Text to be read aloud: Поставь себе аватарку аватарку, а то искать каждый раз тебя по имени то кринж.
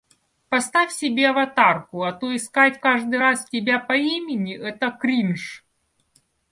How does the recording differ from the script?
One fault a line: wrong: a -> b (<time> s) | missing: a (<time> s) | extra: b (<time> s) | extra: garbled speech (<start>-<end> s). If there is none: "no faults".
missing: аватарку (2.0 s)
wrong: то -> это (4.5 s)